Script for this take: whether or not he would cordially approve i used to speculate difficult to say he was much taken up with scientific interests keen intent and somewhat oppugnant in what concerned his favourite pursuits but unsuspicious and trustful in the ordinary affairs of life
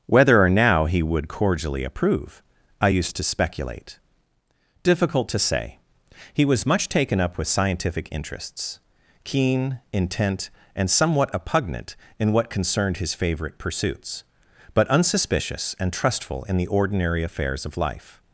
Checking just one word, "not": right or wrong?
wrong